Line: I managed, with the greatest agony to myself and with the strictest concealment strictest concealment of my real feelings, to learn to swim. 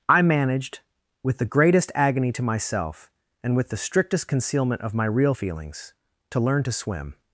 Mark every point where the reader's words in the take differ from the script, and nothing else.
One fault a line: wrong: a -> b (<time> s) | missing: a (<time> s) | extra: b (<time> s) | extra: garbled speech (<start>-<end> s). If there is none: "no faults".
missing: strictest concealment (4.8 s)